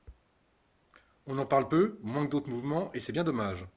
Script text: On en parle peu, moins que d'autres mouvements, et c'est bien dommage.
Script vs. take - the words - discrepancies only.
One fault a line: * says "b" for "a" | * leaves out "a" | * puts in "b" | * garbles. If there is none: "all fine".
all fine